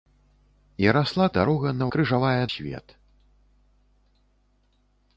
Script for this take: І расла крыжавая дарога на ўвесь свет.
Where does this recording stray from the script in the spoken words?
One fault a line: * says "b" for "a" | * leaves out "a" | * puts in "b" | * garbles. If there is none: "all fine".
* leaves out "крыжавая"
* says "крыжавая" for "ўвесь"